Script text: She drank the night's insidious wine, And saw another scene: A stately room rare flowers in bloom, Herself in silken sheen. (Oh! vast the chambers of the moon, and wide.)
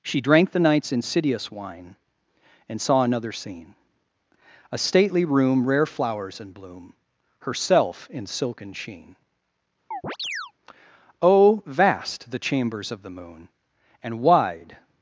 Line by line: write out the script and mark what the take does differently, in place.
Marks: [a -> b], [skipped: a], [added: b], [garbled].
She drank the night's insidious wine, And saw another scene: A stately room rare flowers in bloom, Herself in silken sheen. (Oh! vast the chambers of the moon, and wide.)